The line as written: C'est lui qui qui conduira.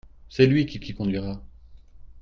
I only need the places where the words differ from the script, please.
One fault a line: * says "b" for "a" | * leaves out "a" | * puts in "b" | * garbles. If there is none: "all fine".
all fine